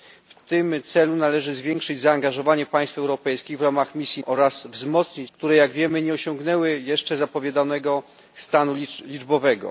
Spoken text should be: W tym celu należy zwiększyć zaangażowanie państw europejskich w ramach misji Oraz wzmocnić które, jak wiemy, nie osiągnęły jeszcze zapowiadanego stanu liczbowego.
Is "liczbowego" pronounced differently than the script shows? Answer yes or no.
no